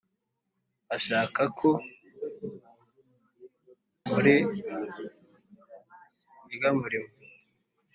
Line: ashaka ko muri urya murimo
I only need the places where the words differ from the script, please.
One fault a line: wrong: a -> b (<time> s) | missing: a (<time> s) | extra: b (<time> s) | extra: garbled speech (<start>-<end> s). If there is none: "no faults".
no faults